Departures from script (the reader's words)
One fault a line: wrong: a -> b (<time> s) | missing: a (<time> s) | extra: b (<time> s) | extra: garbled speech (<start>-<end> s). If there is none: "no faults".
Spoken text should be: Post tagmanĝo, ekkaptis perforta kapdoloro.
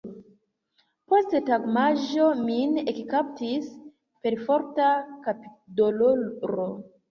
extra: min (2.5 s)